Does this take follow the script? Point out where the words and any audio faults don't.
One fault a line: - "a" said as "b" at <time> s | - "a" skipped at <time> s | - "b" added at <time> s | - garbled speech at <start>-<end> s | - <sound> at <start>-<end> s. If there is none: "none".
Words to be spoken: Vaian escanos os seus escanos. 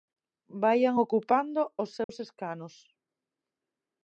- "escanos" said as "ocupando" at 1.0 s
- dropout at 2.0-2.1 s